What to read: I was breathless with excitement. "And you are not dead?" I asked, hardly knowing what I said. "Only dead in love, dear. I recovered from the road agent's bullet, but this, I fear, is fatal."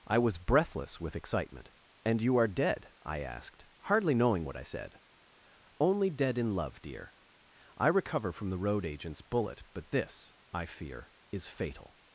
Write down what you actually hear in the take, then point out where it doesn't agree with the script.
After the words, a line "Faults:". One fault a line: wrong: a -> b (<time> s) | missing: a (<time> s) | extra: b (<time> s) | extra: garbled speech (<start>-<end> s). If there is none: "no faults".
I was breathless with excitement. "And you are dead?" I asked, hardly knowing what I said. "Only dead in love, dear. I recover from the road agent's bullet, but this, I fear, is fatal."
Faults:
missing: not (2.5 s)
wrong: recovered -> recover (7.9 s)